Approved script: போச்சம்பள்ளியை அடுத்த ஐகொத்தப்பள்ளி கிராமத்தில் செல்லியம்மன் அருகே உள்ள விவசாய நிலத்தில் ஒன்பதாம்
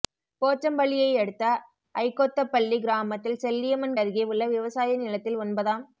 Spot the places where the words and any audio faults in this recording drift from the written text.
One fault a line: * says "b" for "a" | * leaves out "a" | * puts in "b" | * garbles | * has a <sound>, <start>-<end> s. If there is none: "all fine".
all fine